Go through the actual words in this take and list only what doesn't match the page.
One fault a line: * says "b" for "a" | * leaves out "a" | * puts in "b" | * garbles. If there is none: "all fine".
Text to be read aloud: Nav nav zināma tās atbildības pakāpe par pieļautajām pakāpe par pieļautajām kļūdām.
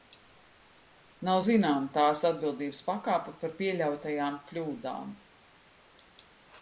* leaves out "nav"
* leaves out "pakāpe par pieļautajām"